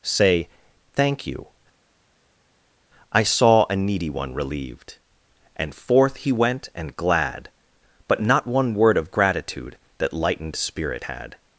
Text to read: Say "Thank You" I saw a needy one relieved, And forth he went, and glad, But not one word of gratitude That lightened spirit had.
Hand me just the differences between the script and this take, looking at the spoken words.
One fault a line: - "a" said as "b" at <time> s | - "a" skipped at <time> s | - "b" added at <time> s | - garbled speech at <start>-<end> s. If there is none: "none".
none